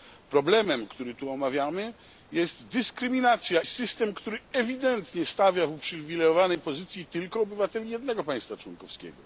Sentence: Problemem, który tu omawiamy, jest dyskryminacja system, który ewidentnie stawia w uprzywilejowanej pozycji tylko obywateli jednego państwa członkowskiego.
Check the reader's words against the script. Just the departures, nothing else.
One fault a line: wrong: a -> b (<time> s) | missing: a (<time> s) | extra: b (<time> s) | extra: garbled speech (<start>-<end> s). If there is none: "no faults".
no faults